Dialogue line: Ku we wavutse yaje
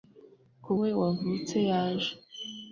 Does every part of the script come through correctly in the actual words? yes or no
yes